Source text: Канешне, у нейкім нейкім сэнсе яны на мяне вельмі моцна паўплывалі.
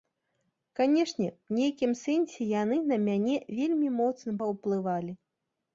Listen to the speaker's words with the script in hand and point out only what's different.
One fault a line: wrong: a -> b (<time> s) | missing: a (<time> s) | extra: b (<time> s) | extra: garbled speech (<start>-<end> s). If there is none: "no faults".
missing: нейкім (1.9 s)